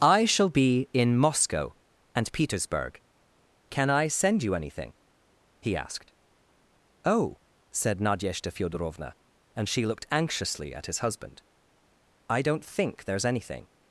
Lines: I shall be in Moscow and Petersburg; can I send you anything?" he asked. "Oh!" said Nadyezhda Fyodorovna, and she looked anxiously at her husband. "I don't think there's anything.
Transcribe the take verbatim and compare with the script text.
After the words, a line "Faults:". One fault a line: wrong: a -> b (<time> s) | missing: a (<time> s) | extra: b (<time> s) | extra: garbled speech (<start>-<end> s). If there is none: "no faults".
I shall be in Moscow and Petersburg; can I send you anything?" he asked. "Oh!" said Nadyezhda Fyodorovna, and she looked anxiously at his husband. "I don't think there's anything.
Faults:
wrong: her -> his (10.9 s)